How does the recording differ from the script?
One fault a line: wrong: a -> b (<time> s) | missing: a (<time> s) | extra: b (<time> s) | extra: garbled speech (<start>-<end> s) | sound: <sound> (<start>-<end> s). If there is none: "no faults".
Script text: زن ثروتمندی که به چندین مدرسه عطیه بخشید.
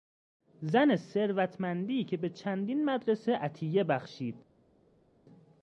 no faults